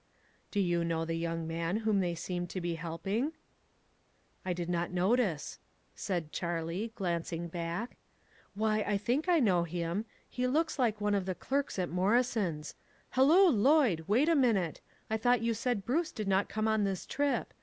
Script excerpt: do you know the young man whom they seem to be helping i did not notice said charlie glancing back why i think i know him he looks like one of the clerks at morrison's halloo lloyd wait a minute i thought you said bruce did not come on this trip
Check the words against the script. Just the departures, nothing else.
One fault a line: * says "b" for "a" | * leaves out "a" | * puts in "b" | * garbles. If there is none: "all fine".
all fine